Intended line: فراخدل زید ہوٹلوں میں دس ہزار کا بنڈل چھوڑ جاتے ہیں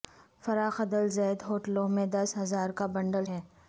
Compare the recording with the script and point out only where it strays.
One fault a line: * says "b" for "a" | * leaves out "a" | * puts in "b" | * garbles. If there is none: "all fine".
* leaves out "چھوڑ جاتے"